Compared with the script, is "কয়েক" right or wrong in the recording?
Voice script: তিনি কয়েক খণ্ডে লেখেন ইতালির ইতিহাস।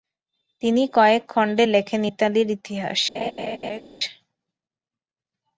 right